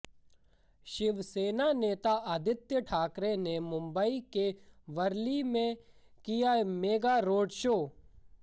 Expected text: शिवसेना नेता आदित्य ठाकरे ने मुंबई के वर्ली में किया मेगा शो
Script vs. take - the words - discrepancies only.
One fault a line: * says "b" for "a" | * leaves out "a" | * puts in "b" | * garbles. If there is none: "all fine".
* puts in "रोड"